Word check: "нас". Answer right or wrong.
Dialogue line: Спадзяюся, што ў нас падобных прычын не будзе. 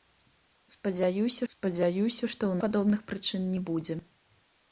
wrong